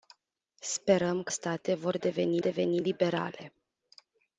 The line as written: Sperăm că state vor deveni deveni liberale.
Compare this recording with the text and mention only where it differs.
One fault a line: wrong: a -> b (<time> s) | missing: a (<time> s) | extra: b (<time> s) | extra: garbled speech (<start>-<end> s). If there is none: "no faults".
no faults